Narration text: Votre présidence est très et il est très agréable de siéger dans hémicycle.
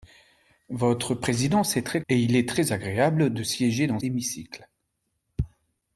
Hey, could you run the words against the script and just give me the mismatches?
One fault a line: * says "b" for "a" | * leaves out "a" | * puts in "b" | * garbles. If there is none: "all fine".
all fine